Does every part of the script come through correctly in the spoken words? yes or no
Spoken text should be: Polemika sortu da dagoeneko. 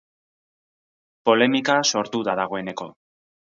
yes